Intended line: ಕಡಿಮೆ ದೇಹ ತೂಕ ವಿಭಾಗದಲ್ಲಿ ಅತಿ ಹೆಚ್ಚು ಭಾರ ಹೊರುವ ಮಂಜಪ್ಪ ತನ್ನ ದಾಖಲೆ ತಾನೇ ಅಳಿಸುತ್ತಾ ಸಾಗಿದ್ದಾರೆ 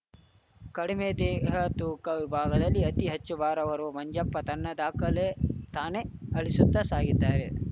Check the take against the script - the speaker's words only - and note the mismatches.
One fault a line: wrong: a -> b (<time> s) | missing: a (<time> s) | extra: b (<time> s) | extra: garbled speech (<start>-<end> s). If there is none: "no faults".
no faults